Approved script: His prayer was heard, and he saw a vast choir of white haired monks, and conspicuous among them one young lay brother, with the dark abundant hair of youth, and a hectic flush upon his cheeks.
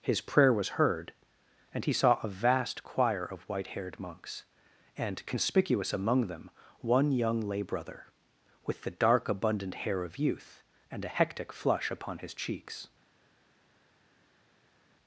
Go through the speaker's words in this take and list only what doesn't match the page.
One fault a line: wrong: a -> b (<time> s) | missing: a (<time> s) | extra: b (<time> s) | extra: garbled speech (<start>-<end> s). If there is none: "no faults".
no faults